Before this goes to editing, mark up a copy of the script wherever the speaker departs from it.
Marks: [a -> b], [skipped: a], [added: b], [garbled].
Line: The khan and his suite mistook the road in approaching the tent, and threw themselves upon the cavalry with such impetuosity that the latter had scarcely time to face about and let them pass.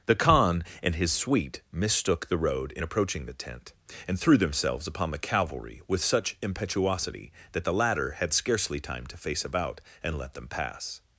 The khan and his suite mistook the road in approaching the tent, and threw themselves upon the cavalry with such impetuosity that the latter had scarcely time to face about and let them pass.